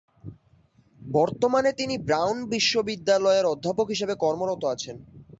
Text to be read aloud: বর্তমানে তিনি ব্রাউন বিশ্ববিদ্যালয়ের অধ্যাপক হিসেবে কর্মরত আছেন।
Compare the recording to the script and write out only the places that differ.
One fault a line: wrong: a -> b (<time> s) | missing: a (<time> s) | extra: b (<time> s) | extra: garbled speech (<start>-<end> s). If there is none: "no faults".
no faults